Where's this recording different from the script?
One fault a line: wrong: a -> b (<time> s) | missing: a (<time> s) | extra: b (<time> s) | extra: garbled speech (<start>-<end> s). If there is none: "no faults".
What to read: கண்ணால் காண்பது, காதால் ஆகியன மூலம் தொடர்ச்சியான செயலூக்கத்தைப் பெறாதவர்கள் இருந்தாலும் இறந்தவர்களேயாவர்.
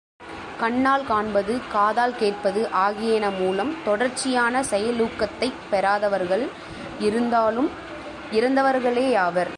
extra: கேட்பது (2.1 s)